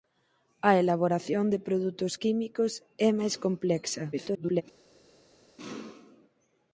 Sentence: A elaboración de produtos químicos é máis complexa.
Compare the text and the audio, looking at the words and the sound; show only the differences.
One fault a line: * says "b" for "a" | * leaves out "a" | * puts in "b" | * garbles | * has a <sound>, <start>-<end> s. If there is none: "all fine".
* garbles